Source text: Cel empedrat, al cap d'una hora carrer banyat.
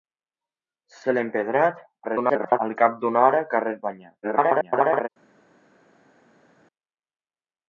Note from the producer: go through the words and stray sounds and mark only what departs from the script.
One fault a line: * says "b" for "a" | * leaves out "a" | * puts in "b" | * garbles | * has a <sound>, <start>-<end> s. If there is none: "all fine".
* garbles
* garbles